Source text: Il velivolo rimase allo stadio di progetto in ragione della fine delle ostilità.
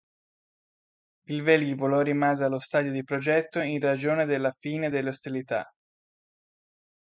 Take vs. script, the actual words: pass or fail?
pass